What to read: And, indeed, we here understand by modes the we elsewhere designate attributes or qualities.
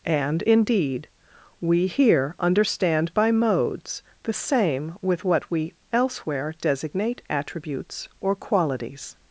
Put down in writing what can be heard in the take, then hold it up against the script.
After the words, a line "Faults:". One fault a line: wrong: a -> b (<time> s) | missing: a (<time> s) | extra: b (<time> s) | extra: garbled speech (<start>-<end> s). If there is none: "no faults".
And, indeed, we here understand by modes the same with what we elsewhere designate attributes or qualities.
Faults:
extra: same with what (4.3 s)